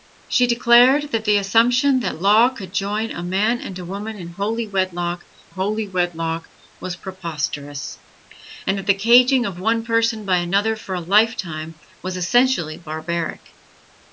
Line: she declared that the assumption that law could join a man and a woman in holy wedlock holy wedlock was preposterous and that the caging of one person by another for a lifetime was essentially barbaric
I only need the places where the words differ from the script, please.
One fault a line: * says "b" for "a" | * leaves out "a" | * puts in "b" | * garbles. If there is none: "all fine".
all fine